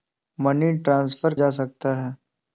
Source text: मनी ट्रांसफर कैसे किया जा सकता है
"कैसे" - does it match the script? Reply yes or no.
no